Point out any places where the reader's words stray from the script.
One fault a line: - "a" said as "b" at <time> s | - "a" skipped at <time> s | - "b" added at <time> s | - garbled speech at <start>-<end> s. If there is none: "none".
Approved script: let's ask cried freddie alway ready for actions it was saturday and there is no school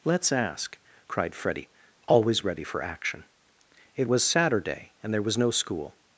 - "alway" said as "always" at 2.1 s
- "actions" said as "action" at 2.8 s
- "is" said as "was" at 5.2 s